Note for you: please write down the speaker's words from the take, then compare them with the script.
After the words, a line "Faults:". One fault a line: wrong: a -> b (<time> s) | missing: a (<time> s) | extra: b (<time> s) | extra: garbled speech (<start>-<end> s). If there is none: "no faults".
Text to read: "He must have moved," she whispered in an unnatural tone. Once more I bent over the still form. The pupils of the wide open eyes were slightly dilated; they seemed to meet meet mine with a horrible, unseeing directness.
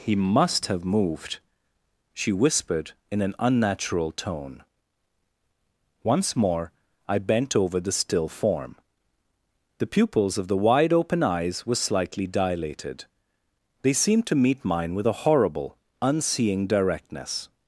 "He must have moved," she whispered in an unnatural tone. Once more I bent over the still form. The pupils of the wide open eyes were slightly dilated; they seemed to meet mine with a horrible, unseeing directness.
Faults:
missing: meet (14.7 s)